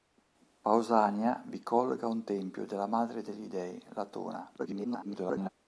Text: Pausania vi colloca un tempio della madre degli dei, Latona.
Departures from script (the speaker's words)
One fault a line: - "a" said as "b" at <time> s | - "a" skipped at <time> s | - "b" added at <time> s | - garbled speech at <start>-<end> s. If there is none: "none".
- garbled speech at 4.6-5.5 s